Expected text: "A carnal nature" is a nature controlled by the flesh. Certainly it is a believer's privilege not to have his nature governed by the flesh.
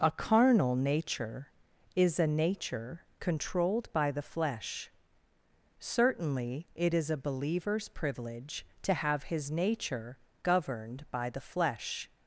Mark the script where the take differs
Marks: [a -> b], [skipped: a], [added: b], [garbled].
"A carnal nature" is a nature controlled by the flesh. Certainly it is a believer's privilege [skipped: not] to have his nature governed by the flesh.